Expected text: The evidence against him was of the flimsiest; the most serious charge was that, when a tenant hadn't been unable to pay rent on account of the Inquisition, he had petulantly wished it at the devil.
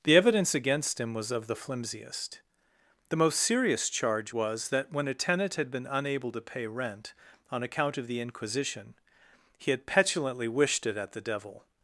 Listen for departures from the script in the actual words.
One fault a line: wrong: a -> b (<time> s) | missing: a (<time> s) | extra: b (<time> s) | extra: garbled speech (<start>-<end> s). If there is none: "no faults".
wrong: hadn't -> had (5.6 s)